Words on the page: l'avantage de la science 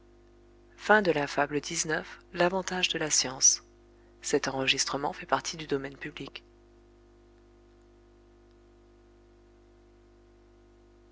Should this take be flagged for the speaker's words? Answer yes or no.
no